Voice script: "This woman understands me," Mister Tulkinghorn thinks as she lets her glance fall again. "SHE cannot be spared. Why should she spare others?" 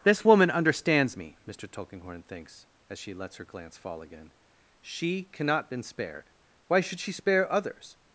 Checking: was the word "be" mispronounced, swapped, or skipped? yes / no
yes